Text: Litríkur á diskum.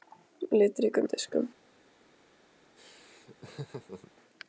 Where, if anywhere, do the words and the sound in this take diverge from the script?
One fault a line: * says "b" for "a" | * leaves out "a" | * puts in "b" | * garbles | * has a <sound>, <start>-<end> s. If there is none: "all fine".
* has a laugh, 2.8-4.1 s